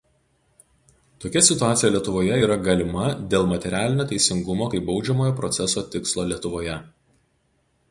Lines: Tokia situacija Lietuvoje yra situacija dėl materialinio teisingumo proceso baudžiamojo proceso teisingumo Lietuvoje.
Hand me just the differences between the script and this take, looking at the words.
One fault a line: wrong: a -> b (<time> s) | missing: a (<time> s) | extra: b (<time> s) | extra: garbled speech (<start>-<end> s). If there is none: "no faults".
wrong: situacija -> galima (2.7 s)
wrong: proceso -> kaip (4.7 s)
wrong: teisingumo -> tikslo (6.0 s)